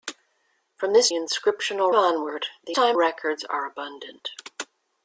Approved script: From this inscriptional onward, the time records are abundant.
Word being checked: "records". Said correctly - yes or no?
yes